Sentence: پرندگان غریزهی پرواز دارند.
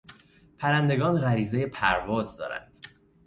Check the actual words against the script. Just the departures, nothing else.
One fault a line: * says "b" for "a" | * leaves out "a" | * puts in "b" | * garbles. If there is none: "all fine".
all fine